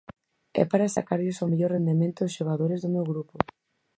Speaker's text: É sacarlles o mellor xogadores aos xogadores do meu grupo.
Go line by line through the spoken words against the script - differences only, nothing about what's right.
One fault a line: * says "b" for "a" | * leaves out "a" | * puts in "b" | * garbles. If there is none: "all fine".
* puts in "para"
* says "rendemento" for "xogadores"